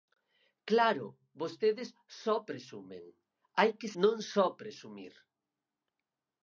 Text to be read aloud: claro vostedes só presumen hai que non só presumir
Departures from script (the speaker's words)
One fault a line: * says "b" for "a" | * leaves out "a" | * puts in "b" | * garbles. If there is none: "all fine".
all fine